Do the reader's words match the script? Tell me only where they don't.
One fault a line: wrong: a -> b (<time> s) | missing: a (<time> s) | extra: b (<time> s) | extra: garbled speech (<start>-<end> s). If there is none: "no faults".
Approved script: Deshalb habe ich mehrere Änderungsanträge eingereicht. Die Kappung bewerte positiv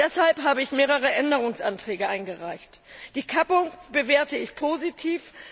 extra: ich (4.4 s)